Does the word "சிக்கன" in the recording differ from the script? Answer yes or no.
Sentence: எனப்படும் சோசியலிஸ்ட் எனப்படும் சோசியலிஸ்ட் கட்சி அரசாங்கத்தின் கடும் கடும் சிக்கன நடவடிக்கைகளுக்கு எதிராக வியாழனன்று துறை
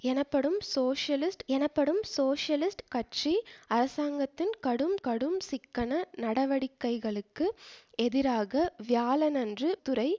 no